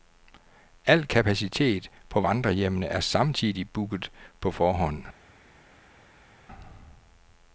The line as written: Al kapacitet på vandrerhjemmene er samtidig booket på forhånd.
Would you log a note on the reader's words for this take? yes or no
no